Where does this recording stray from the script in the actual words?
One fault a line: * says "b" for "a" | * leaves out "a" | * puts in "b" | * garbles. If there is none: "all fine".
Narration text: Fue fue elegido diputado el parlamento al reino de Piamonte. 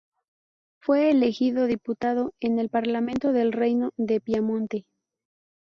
* leaves out "fue"
* puts in "en"
* says "del" for "al"